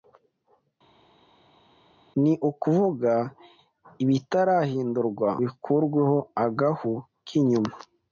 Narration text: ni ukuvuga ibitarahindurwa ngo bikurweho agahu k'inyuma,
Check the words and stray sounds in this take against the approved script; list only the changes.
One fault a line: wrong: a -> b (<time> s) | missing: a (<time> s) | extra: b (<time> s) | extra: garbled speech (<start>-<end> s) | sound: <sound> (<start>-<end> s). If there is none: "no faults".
missing: ngo (5.3 s)